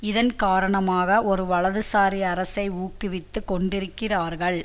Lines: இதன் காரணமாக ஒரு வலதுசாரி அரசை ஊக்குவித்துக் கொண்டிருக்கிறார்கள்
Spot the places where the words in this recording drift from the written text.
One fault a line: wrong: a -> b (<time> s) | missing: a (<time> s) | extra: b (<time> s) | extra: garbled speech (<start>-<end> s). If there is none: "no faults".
no faults